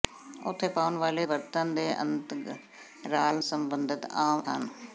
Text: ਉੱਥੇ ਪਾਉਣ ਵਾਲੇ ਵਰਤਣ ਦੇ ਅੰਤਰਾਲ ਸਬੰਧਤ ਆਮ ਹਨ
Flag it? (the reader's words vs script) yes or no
no